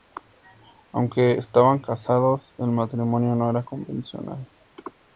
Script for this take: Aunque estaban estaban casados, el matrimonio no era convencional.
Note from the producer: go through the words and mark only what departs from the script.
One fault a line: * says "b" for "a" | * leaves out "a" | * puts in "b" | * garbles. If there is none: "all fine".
* leaves out "estaban"